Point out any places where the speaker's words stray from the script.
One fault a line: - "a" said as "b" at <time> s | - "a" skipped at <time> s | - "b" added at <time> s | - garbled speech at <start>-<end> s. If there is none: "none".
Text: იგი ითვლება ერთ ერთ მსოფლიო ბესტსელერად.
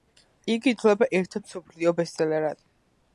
none